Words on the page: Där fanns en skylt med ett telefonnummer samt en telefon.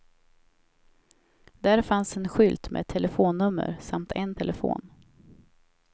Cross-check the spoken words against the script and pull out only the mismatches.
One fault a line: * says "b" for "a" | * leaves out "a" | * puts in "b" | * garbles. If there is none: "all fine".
all fine